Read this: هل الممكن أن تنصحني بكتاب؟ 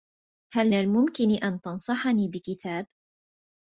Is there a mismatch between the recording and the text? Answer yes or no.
no